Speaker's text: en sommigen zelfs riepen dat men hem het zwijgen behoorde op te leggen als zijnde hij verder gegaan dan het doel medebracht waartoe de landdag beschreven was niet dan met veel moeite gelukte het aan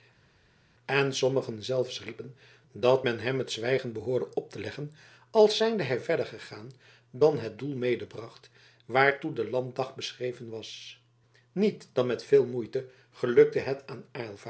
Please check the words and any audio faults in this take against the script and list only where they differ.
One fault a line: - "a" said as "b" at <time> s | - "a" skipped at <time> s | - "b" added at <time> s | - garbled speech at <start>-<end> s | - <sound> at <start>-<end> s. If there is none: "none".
none